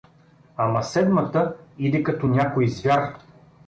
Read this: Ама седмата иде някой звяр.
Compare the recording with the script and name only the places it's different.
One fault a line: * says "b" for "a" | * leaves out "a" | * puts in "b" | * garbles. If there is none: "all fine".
* puts in "като"